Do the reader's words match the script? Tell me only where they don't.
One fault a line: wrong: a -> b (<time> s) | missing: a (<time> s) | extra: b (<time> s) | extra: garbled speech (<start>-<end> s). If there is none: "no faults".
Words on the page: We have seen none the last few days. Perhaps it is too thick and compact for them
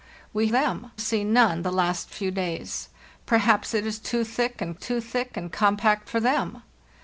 wrong: have -> them (0.5 s)
extra: too thick and (4.7 s)